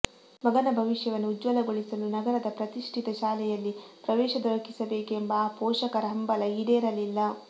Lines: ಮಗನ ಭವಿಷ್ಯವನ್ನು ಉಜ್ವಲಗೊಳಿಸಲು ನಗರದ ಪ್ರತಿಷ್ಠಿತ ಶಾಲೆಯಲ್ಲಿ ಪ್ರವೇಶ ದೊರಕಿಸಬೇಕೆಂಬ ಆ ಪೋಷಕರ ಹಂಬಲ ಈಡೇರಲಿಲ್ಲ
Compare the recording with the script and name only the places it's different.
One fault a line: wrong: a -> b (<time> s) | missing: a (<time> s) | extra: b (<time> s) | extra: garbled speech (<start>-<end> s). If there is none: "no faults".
no faults